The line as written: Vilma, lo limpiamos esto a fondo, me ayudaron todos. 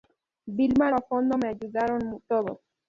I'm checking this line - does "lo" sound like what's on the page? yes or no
no